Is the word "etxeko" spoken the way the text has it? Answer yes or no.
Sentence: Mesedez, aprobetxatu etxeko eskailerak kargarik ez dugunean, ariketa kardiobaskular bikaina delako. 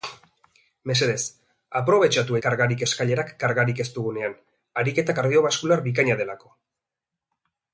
no